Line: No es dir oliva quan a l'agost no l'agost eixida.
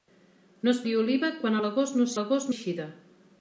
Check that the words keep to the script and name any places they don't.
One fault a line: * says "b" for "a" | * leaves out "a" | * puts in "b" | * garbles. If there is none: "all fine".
all fine